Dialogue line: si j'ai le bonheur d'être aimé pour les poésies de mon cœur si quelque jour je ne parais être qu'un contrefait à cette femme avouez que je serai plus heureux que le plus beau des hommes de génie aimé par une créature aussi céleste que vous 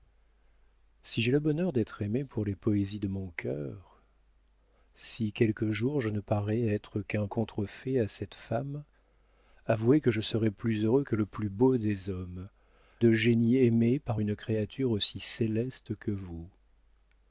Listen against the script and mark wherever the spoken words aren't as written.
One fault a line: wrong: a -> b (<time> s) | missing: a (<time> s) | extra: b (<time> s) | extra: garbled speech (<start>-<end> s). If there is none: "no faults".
no faults